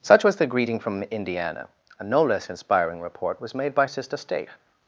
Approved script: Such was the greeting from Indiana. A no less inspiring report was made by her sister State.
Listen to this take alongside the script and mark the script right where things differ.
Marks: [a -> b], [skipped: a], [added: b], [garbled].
Such was the greeting from Indiana. A no less inspiring report was made by [skipped: her] sister State.